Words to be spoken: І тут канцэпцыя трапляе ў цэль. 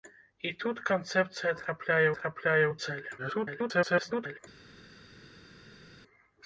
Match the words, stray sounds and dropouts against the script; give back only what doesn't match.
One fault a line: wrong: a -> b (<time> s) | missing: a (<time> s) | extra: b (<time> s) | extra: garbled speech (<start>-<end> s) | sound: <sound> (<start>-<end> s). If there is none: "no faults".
extra: трапляе (2.2 s)
extra: garbled speech (3.2-4.4 s)